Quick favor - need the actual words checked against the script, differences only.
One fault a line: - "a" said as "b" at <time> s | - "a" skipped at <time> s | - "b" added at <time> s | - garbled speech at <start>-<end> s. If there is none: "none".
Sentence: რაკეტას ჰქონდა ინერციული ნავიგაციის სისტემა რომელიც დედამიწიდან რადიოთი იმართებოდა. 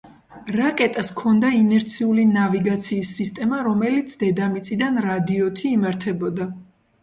none